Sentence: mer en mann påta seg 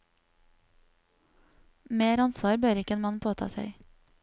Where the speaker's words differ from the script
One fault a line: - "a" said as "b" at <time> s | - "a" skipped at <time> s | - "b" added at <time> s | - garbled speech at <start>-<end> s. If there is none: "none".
- "ansvar bør ikke" added at 2.2 s